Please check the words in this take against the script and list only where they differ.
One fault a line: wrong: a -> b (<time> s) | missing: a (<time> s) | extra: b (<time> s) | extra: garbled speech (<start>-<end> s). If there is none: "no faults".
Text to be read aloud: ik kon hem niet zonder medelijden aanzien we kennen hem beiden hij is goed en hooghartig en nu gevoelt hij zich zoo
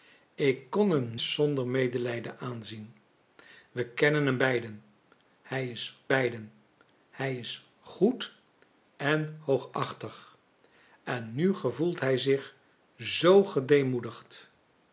missing: niet (1.2 s)
extra: beiden hij is (6.1 s)